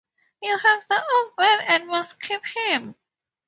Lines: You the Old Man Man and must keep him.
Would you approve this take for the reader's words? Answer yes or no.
no